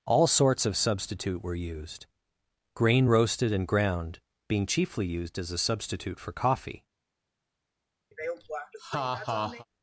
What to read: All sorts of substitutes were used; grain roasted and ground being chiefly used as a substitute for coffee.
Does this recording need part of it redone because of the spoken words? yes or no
yes